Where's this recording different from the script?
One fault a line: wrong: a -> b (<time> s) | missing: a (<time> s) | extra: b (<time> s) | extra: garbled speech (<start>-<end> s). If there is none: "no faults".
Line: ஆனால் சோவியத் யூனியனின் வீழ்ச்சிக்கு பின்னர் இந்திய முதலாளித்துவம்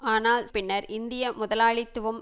missing: சோவியத் யூனியனின் வீழ்ச்சிக்கு (0.5 s)